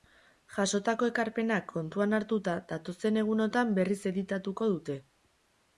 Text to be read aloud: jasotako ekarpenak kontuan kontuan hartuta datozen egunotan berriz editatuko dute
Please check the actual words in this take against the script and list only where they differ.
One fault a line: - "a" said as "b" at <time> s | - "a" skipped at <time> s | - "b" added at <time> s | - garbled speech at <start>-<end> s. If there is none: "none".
- "kontuan" skipped at 2.2 s